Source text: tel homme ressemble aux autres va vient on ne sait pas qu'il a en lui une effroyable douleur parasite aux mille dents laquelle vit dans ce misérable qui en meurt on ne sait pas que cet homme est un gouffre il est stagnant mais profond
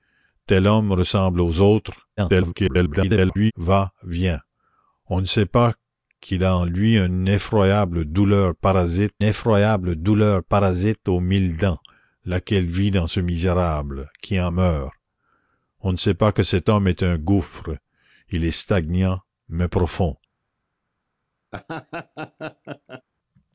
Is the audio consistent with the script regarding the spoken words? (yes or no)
no